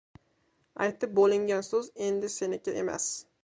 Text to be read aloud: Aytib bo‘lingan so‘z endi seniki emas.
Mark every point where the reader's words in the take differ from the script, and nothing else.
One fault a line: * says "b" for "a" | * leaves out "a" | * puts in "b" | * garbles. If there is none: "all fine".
all fine